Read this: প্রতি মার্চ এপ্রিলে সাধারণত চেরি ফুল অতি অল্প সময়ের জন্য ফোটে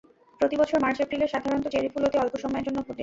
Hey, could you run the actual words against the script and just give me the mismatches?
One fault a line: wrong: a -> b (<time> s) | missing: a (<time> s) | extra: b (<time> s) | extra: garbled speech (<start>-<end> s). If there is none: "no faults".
extra: বছর (0.6 s)